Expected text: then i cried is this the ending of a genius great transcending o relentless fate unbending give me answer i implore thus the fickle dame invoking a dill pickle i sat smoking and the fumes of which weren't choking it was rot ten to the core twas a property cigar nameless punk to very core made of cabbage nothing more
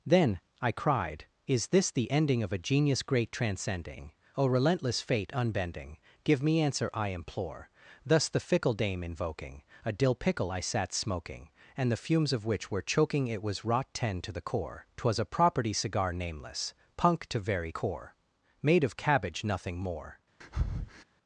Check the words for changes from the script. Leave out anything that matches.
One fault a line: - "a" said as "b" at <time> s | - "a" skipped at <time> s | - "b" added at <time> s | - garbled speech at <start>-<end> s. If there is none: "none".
- "weren't" said as "were" at 12.7 s